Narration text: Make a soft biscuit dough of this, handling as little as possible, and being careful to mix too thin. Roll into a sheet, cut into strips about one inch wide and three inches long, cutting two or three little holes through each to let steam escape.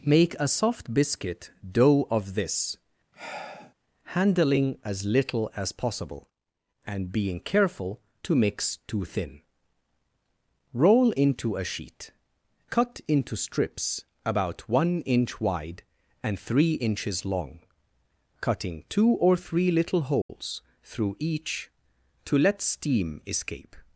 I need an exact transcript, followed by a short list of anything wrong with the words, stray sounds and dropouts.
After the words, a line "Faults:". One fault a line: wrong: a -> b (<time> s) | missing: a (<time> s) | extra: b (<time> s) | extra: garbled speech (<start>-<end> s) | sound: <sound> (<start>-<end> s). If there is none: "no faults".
Make a soft biscuit dough of this, handling as little as possible, and being careful to mix too thin. Roll into a sheet, cut into strips about one inch wide and three inches long, cutting two or three little holes through each to let steam escape.
Faults:
sound: sigh (3.1-3.7 s)
sound: dropout (20.2-20.3 s)